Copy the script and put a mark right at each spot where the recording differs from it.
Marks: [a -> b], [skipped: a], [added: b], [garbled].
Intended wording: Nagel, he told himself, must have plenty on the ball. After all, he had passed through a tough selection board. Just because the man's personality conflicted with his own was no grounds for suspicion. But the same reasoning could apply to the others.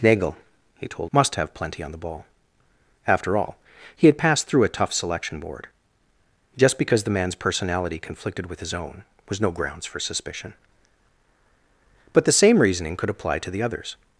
Nagel, he told [skipped: himself,] must have plenty on the ball. After all, he had passed through a tough selection board. Just because the man's personality conflicted with his own was no grounds for suspicion. But the same reasoning could apply to the others.